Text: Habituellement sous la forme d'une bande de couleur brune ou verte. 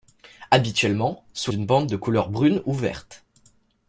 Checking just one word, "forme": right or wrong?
wrong